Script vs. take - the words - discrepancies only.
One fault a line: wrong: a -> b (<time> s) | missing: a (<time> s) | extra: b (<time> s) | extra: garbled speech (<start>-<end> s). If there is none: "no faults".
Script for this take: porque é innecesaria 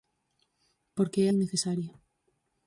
no faults